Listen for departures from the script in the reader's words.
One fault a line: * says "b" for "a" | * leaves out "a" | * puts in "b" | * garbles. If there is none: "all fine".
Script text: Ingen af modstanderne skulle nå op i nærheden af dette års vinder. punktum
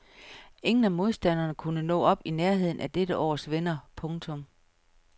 * says "kunne" for "skulle"